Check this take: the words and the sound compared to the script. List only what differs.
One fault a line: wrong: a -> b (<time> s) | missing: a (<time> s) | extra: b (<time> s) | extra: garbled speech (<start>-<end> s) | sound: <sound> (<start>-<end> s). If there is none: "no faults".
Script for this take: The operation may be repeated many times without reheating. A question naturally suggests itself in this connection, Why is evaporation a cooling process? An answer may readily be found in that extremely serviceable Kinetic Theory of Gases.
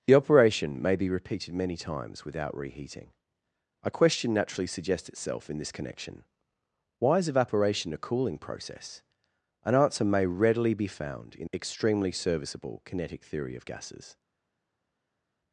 missing: that (11.5 s)